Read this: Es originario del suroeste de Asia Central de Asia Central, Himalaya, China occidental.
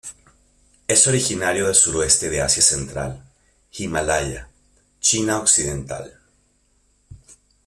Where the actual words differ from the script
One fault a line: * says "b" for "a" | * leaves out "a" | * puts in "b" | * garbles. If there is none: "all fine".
* leaves out "de Asia Central"